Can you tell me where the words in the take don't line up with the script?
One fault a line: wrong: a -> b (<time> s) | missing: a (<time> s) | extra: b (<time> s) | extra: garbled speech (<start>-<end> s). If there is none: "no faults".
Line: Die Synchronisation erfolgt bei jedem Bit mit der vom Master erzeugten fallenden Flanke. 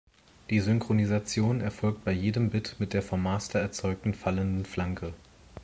no faults